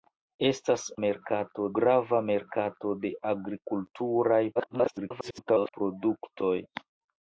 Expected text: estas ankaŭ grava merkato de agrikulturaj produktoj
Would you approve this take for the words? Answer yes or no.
no